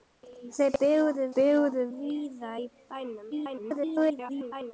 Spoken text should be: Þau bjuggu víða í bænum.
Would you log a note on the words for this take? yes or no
yes